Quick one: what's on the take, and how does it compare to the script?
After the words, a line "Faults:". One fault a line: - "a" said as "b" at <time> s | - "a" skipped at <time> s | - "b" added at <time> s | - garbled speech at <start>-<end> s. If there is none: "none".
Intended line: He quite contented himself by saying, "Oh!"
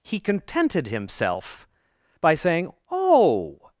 He contented himself by saying, "Oh!"
Faults:
- "quite" skipped at 0.2 s